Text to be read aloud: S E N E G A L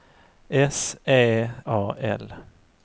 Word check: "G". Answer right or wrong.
wrong